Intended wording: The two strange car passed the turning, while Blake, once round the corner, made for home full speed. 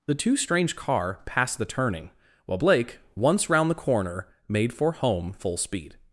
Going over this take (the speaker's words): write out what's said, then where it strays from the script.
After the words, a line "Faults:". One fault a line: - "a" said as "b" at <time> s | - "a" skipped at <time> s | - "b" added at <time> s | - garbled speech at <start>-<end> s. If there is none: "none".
The two strange car passed the turning, while Blake, once round the corner, made for home full speed.
Faults:
none